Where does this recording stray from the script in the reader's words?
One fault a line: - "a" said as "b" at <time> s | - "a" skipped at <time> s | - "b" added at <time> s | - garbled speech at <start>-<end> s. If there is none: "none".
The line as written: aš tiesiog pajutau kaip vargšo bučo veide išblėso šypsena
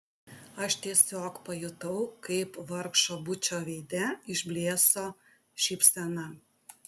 none